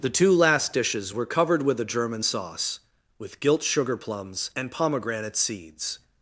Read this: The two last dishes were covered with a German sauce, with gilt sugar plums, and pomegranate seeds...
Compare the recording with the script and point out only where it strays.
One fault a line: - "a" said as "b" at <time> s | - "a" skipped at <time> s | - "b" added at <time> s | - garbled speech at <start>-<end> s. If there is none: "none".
none